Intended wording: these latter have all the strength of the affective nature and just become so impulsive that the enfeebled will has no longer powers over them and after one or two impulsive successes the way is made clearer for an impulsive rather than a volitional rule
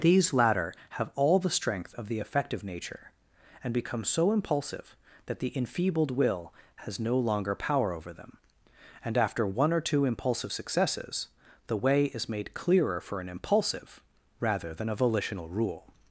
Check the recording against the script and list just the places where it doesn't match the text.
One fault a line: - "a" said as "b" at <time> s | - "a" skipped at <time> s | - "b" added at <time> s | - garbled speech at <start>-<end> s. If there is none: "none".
- "just" skipped at 3.7 s
- "powers" said as "power" at 7.5 s